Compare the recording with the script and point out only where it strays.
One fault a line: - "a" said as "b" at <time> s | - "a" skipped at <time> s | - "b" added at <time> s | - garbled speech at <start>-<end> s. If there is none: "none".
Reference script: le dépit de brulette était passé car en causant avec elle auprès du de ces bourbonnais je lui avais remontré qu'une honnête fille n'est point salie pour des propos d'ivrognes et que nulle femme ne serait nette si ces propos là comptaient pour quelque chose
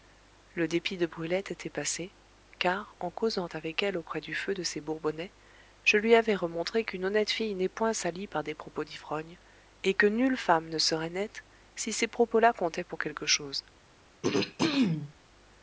- "feu" added at 4.3 s
- "pour" said as "par" at 8.3 s